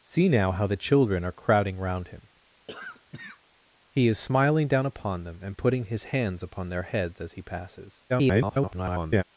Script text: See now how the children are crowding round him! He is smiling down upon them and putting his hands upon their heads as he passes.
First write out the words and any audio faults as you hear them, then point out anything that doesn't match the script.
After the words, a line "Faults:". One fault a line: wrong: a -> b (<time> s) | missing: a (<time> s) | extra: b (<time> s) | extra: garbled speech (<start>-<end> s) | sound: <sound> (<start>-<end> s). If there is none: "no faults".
See now how the children are crowding round him! He is smiling down upon them and putting his hands upon their heads as he passes. [garbled]
Faults:
sound: cough (2.7-3.4 s)
extra: garbled speech (8.1-9.2 s)